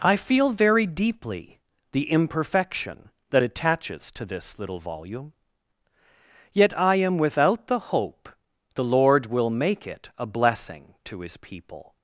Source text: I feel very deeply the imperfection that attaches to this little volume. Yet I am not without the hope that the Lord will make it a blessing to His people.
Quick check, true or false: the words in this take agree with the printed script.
false